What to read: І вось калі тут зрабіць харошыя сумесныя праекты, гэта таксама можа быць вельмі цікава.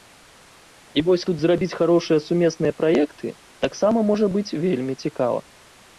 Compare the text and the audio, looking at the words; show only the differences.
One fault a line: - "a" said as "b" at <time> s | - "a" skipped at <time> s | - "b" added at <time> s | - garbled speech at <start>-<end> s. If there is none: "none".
- "калі" skipped at 1.2 s
- "гэта" skipped at 3.3 s